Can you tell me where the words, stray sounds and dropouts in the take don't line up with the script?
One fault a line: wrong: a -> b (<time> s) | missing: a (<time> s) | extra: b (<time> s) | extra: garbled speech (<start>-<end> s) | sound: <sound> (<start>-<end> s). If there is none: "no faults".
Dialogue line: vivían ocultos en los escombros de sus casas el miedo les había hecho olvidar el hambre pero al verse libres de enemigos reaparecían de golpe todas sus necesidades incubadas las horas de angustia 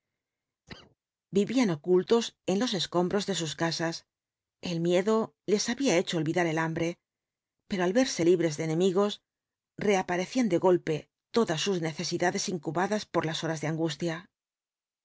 sound: cough (0.7-1.0 s)
extra: por (13.0 s)